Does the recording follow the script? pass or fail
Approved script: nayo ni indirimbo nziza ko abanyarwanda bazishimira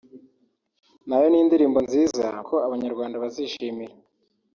pass